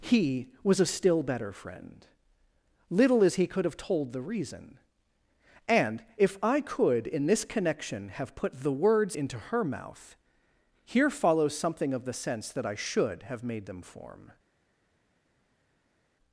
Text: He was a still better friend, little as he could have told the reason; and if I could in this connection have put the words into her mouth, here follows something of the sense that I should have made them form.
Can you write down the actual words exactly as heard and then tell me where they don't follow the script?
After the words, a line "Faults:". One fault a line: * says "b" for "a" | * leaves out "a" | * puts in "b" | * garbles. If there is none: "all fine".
He was a still better friend, little as he could have told the reason; and if I could in this connection have put the words into her mouth, here follows something of the sense that I should have made them form.
Faults:
all fine